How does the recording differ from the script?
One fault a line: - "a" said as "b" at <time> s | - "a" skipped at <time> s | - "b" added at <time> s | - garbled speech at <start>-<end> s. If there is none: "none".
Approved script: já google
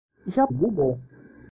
none